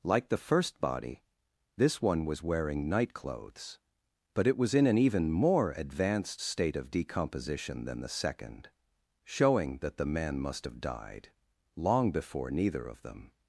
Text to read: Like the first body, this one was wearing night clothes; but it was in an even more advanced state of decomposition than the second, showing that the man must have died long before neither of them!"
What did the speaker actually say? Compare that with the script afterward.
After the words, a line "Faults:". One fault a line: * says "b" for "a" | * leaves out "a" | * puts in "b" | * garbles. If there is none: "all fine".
Like the first body, this one was wearing night clothes; but it was in an even more advanced state of decomposition than the second, showing that the man must have died long before neither of them!"
Faults:
all fine